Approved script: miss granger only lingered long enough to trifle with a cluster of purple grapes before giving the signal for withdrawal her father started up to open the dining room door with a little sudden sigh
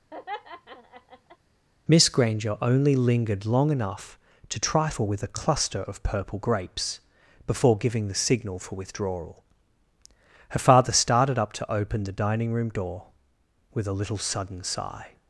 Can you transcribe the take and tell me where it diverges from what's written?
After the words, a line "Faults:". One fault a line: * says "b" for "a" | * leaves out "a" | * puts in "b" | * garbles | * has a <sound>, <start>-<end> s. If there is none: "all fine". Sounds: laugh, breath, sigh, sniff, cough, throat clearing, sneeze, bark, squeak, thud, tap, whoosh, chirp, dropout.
miss granger only lingered long enough to trifle with a cluster of purple grapes before giving the signal for withdrawal her father started up to open the dining room door with a little sudden sigh
Faults:
* has a laugh, 0.1-1.4 s